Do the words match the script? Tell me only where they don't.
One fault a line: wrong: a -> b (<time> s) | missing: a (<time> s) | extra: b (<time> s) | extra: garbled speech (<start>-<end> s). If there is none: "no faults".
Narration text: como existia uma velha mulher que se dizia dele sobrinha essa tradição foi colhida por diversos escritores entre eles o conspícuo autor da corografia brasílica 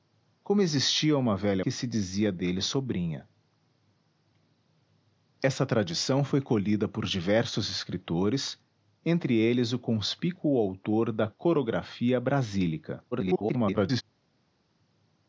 missing: mulher (1.6 s)
extra: garbled speech (13.1-14.0 s)